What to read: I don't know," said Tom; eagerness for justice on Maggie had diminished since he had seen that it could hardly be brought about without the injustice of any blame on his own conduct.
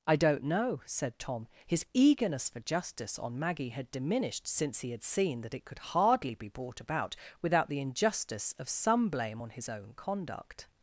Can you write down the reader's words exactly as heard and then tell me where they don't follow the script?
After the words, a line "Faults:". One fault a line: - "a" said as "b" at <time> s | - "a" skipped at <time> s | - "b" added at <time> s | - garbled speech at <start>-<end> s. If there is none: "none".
I don't know," said Tom; his eagerness for justice on Maggie had diminished since he had seen that it could hardly be brought about without the injustice of some blame on his own conduct.
Faults:
- "his" added at 1.7 s
- "any" said as "some" at 8.7 s